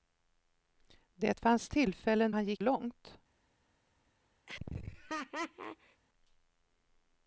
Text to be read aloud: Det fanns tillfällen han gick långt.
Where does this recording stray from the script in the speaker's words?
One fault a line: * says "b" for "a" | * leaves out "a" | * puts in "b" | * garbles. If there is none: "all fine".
all fine